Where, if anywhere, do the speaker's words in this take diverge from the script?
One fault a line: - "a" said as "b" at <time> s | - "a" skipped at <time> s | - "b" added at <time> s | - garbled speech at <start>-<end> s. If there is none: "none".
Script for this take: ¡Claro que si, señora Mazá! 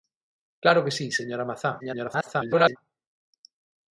- garbled speech at 1.8-2.8 s